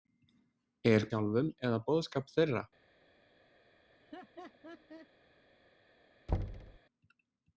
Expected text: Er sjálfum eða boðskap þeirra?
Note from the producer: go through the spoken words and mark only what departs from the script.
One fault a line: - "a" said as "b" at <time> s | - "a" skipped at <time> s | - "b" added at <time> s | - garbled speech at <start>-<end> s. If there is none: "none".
none